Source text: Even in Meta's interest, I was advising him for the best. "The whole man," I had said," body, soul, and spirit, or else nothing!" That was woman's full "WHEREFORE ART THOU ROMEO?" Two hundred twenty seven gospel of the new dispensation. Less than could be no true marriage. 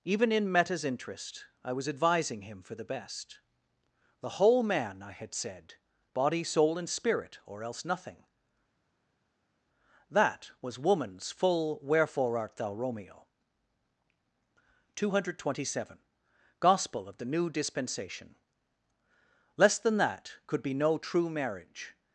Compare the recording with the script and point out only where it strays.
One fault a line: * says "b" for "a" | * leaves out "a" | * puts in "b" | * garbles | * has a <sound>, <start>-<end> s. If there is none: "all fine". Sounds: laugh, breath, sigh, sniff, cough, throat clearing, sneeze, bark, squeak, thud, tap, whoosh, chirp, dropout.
* puts in "that"